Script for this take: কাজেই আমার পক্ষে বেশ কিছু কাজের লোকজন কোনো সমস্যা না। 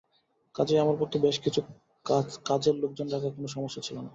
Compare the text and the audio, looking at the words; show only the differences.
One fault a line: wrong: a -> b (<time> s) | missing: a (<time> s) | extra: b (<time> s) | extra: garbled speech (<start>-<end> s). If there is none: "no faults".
extra: রাখা (3.1 s)
extra: ছিল (3.8 s)